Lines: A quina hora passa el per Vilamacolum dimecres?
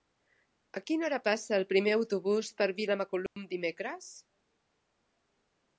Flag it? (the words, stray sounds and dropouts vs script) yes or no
yes